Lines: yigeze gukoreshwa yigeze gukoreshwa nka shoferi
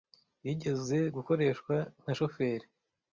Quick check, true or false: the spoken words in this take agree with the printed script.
false